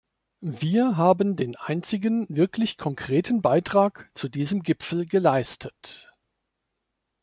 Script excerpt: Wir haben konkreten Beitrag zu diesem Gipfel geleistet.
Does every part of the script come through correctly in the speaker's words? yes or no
no